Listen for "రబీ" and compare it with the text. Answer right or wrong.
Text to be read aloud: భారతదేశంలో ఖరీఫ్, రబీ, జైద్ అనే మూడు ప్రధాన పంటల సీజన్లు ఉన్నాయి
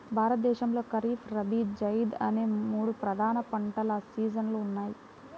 right